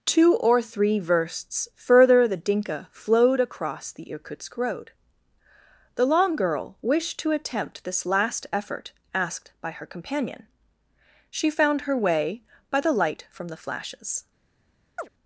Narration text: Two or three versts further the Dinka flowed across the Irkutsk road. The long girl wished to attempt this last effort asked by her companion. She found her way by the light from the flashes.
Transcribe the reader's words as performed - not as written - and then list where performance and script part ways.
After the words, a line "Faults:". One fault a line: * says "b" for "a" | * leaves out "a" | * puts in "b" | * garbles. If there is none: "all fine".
Two or three versts further the Dinka flowed across the Irkutsk road. The long girl wished to attempt this last effort asked by her companion. She found her way by the light from the flashes.
Faults:
all fine